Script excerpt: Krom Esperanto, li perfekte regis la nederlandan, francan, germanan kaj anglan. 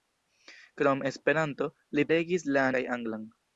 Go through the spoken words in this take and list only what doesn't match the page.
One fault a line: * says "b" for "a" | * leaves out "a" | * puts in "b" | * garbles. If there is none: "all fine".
* leaves out "perfekte"
* leaves out "nederlandan francan germanan"